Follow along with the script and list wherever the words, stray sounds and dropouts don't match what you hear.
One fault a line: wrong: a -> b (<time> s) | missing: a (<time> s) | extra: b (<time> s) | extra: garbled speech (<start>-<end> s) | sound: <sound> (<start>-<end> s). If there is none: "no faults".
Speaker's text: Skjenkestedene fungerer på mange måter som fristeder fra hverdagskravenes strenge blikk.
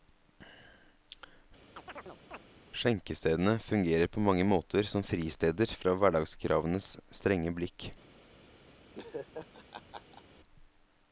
sound: chirp (1.8-2.4 s)
sound: laugh (8.9-10.2 s)